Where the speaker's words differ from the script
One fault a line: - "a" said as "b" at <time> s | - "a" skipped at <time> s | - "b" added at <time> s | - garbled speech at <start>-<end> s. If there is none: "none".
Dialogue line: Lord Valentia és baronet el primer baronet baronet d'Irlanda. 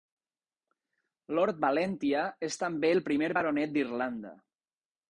- "baronet" said as "també" at 2.6 s
- "baronet" skipped at 3.8 s